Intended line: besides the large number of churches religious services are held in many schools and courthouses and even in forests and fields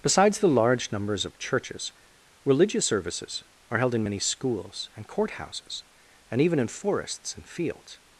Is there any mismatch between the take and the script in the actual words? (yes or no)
yes